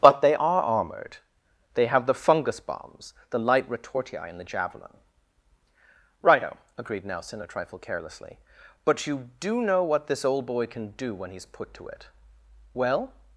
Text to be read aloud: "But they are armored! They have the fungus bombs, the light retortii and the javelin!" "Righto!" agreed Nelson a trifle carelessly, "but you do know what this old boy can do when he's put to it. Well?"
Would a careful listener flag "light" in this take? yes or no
no